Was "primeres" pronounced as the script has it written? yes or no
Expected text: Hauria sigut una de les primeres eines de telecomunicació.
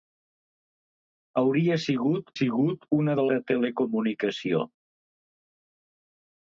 no